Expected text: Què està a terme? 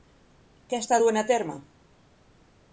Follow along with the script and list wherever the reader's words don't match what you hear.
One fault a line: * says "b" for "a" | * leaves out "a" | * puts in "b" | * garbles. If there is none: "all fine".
* puts in "duent"